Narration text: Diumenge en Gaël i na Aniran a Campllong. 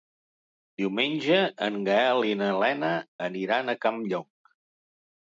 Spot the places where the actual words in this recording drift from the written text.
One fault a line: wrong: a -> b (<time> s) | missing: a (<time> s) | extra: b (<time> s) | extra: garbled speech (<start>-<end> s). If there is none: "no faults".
extra: Lena (2.6 s)